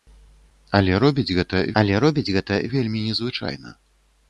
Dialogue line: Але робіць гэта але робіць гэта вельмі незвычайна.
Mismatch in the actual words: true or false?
false